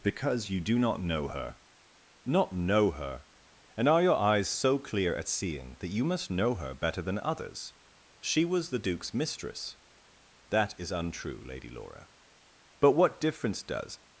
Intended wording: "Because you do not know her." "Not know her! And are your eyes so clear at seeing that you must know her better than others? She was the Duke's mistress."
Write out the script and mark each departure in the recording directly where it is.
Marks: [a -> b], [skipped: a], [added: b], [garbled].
"Because you do not know her." "Not know her! And are your eyes so clear at seeing that you must know her better than others? She was the Duke's mistress." [added: That is untrue Lady Laura But what difference does]